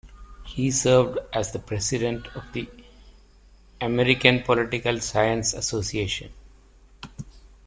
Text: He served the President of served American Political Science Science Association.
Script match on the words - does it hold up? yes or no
no